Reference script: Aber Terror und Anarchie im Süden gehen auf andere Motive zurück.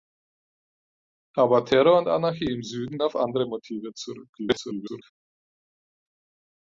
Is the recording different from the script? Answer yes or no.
yes